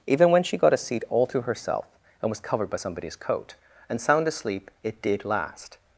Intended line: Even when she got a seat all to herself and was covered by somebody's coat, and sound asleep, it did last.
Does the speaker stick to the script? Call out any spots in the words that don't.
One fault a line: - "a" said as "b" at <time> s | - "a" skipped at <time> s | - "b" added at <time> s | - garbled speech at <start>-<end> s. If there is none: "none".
none